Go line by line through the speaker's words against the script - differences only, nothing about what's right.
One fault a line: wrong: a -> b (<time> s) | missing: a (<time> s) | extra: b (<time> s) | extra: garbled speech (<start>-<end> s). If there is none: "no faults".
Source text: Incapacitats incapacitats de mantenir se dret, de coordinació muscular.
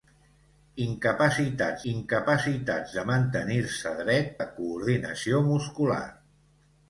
no faults